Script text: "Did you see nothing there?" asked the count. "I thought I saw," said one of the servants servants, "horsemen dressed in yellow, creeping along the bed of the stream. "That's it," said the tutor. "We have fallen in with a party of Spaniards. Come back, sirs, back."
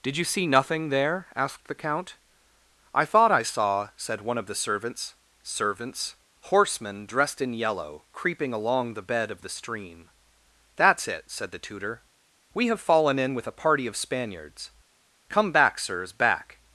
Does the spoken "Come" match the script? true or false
true